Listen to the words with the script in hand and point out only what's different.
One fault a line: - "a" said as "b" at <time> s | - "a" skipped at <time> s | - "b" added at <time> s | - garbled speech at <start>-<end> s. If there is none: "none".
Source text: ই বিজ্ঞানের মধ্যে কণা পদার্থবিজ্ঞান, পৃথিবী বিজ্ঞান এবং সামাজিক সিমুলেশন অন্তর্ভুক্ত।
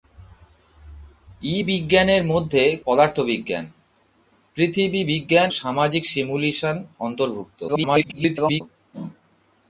- "কণা" skipped at 2.6 s
- "এবং" skipped at 5.5 s
- garbled speech at 7.7-8.6 s